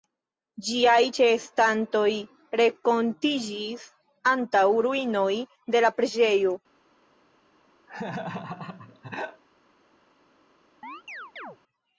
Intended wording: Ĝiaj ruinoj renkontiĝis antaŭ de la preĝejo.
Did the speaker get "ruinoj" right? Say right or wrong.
wrong